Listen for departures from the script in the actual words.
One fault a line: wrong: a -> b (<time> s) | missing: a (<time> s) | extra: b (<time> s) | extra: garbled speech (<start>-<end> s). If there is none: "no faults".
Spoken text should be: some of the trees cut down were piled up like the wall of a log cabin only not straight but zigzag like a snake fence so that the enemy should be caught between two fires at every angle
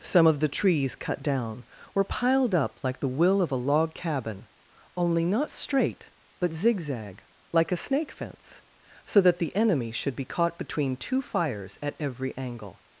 wrong: wall -> will (3.1 s)